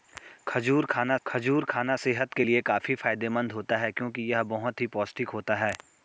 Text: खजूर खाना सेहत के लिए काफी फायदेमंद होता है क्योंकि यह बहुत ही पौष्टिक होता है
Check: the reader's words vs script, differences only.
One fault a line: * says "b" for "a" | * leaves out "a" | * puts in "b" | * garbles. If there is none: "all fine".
* puts in "खजूर खाना"